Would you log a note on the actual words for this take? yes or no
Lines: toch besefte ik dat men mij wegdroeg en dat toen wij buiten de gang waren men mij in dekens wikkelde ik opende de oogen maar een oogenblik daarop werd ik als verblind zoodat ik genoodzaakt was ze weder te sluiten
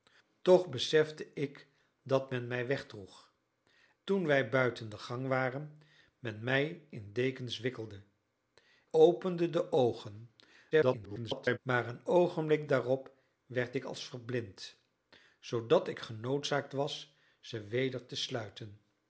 yes